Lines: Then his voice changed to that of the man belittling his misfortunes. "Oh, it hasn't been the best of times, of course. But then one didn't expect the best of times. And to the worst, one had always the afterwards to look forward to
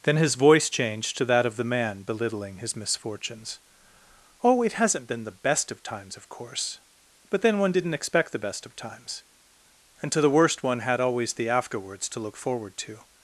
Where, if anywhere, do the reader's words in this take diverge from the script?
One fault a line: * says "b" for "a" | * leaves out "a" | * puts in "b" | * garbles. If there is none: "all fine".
all fine